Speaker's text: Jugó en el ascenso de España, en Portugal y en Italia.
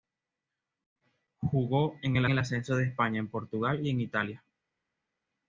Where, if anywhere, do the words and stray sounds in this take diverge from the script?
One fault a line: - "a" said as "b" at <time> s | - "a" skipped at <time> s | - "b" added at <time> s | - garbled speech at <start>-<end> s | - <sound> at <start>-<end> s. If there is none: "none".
- "el" added at 2.3 s